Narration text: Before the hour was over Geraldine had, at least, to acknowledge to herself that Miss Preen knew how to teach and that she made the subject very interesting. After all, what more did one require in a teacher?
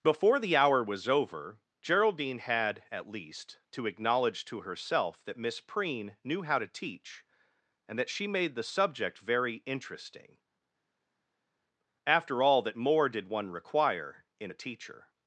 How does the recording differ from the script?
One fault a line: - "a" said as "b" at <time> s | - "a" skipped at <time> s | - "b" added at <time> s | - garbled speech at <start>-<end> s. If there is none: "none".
- "what" said as "that" at 12.6 s